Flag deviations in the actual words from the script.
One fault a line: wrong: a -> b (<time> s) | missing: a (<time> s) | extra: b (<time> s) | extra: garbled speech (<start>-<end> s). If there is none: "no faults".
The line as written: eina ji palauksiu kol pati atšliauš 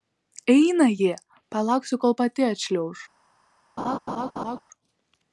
no faults